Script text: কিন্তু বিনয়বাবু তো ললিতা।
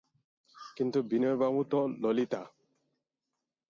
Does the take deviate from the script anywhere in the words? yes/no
no